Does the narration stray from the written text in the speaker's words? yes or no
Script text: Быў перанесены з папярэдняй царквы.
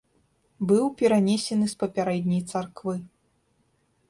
no